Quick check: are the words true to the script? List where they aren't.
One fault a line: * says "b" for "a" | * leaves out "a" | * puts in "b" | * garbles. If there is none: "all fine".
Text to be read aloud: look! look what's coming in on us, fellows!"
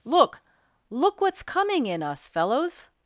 * leaves out "on"